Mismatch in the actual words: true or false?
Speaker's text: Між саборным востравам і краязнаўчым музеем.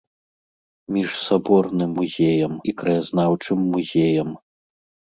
true